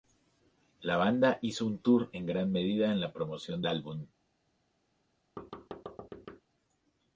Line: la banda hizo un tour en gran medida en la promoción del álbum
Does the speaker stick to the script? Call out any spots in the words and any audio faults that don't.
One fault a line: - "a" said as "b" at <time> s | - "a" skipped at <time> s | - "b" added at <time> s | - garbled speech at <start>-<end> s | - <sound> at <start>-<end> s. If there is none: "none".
- "del" skipped at 3.6 s
- thud at 5.4-6.4 s